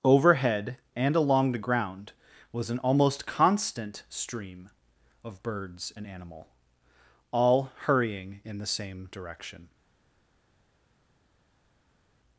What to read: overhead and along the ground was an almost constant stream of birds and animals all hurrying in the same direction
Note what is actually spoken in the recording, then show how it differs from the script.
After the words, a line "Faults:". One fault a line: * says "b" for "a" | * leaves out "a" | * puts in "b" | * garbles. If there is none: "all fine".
overhead and along the ground was an almost constant stream of birds and animal all hurrying in the same direction
Faults:
* says "animal" for "animals"